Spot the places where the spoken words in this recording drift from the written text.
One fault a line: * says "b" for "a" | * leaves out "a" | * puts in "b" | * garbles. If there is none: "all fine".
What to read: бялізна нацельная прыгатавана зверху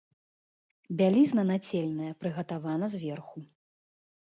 all fine